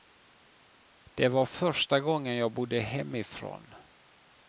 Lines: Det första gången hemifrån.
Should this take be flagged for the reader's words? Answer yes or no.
yes